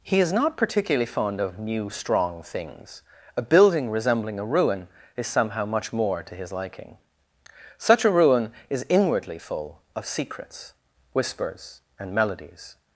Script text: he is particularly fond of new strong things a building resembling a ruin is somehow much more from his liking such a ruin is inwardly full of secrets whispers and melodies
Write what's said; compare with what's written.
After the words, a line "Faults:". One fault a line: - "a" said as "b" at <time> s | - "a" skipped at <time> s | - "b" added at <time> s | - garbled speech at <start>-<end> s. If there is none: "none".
he is not particularly fond of new strong things a building resembling a ruin is somehow much more to his liking such a ruin is inwardly full of secrets whispers and melodies
Faults:
- "not" added at 0.3 s
- "from" said as "to" at 6.2 s